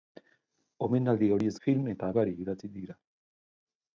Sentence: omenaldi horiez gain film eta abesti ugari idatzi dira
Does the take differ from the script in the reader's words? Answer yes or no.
yes